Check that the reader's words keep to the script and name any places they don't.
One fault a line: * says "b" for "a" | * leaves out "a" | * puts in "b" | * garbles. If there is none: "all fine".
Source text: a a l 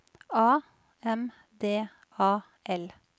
* puts in "m d"